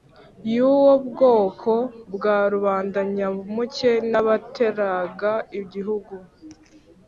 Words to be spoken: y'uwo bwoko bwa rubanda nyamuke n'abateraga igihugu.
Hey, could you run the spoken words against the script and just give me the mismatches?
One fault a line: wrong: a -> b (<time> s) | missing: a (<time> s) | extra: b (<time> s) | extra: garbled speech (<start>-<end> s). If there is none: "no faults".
no faults